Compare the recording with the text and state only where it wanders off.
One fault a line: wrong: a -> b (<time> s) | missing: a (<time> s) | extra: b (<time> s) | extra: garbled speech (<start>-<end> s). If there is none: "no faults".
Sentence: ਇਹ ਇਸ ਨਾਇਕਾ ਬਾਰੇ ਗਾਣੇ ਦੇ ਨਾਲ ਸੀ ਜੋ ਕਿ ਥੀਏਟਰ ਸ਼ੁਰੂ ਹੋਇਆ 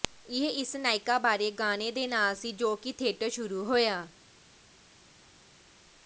no faults